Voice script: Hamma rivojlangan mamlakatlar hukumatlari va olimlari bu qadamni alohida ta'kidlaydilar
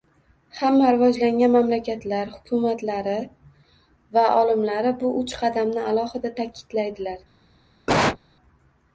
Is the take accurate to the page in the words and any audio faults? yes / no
no